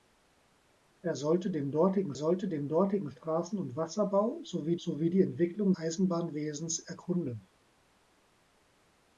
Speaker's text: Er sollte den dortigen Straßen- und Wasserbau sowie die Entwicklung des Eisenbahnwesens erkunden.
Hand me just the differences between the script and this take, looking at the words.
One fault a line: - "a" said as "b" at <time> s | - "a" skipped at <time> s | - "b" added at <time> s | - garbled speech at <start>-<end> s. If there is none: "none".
- "sollte den dortigen" added at 2.1 s
- "sowie" added at 4.8 s
- "des" skipped at 5.7 s